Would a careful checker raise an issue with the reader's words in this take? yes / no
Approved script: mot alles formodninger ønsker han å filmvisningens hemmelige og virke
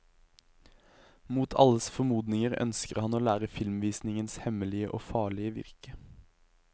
yes